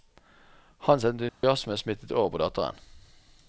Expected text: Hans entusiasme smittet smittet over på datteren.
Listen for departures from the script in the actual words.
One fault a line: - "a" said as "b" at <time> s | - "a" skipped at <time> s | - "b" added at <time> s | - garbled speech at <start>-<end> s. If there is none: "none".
- "smittet" skipped at 2.1 s